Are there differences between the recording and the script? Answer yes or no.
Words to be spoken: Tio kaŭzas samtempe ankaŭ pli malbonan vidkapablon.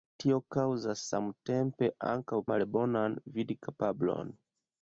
yes